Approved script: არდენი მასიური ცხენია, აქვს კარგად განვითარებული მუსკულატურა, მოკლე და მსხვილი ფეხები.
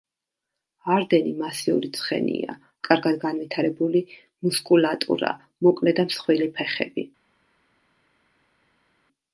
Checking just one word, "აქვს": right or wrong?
wrong